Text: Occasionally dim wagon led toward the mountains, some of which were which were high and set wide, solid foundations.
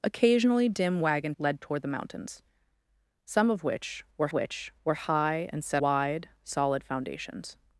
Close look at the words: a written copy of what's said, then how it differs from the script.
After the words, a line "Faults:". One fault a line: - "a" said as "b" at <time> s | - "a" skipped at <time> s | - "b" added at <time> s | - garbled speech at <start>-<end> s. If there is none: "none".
Occasionally dim wagon led toward the mountains, some of which were which were high and set wide, solid foundations.
Faults:
none